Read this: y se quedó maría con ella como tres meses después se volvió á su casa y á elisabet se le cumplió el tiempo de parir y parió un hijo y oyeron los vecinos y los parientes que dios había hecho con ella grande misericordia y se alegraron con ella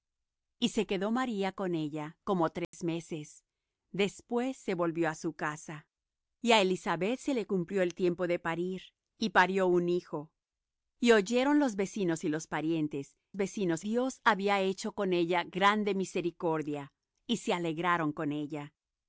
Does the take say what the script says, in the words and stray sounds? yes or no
no